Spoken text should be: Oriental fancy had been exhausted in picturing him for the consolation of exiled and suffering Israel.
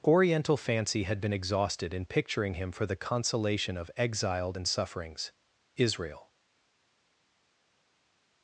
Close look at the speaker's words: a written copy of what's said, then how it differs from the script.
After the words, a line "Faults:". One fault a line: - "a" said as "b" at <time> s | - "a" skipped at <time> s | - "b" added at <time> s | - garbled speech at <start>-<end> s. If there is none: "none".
Oriental fancy had been exhausted in picturing him for the consolation of exiled and sufferings Israel.
Faults:
- "suffering" said as "sufferings" at 4.6 s